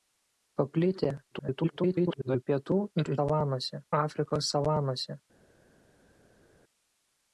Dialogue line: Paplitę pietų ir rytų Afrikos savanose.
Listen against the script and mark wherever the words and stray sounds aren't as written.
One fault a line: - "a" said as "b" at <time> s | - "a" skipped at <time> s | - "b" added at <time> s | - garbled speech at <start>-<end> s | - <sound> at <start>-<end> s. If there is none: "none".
- garbled speech at 1.3-2.4 s
- "rytų" said as "savanose" at 3.2 s